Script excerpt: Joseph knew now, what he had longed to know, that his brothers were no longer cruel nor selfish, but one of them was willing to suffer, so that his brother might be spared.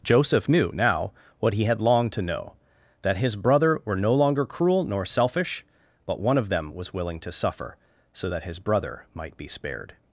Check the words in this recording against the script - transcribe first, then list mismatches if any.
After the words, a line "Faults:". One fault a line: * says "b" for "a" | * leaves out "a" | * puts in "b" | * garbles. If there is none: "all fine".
Joseph knew now, what he had longed to know, that his brother were no longer cruel nor selfish, but one of them was willing to suffer, so that his brother might be spared.
Faults:
* says "brother" for "brothers"